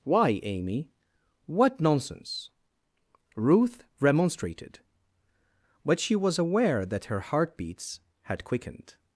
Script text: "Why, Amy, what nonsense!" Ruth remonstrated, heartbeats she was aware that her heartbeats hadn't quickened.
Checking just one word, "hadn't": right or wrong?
wrong